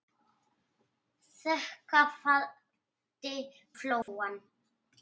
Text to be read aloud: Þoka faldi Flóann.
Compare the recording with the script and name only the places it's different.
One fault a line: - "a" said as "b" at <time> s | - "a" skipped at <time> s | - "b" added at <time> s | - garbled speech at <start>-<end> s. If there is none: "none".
none